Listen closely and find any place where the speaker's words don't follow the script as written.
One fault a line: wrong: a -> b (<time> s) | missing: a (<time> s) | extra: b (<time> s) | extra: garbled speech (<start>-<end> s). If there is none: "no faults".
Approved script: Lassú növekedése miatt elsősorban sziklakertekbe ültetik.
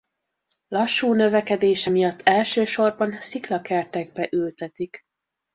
no faults